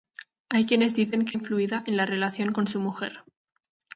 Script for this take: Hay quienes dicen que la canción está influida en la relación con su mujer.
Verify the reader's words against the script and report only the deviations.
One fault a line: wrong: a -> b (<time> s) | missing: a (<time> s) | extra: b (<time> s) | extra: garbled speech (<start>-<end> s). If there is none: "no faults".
missing: la canción está (1.4 s)